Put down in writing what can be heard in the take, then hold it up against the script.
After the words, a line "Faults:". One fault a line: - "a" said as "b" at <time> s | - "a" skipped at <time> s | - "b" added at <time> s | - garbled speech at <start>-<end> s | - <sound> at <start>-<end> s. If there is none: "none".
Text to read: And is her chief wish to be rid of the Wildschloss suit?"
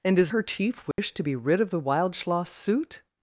And is her chief wish to be rid of the Wildschloss suit?"
Faults:
- dropout at 0.9-1.0 s